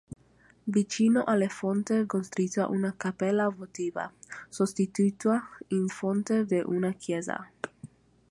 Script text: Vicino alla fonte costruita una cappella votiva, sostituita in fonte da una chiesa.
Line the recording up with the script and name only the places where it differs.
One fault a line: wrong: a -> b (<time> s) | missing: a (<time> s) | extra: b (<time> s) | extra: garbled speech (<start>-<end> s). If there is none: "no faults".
no faults